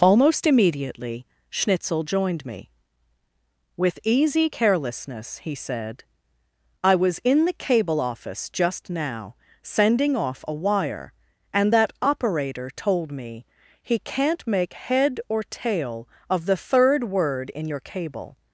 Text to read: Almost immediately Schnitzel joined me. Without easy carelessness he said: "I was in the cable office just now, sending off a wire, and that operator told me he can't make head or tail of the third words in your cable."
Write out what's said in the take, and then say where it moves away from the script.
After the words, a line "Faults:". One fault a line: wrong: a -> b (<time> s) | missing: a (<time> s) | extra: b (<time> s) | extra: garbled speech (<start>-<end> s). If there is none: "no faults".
Almost immediately Schnitzel joined me. With easy carelessness he said: "I was in the cable office just now, sending off a wire, and that operator told me he can't make head or tail of the third word in your cable."
Faults:
wrong: Without -> With (3.8 s)
wrong: words -> word (17.1 s)